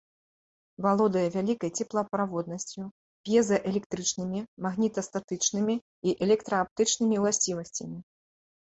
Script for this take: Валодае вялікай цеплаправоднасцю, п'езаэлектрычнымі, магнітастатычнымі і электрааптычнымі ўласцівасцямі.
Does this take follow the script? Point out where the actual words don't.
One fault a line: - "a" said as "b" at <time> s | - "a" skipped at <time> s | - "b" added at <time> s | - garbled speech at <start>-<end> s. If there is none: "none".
none